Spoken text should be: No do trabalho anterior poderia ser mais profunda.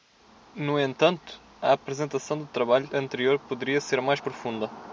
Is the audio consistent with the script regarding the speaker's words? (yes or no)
no